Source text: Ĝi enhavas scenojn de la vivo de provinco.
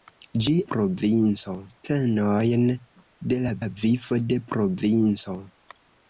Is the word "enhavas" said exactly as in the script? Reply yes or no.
no